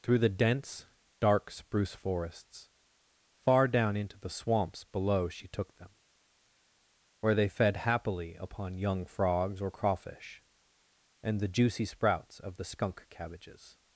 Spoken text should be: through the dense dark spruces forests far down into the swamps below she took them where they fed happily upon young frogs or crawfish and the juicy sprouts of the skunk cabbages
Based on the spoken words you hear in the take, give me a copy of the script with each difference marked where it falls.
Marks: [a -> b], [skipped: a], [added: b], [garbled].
through the dense dark [spruces -> spruce] forests far down into the swamps below she took them where they fed happily upon young frogs or crawfish and the juicy sprouts of the skunk cabbages